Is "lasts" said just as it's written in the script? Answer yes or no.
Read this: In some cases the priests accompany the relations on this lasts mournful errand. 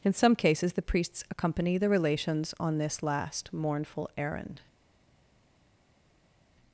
no